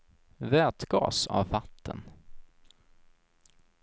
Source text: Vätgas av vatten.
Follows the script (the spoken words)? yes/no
yes